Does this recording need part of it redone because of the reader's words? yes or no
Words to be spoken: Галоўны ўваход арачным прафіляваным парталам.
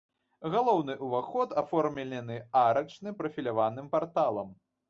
yes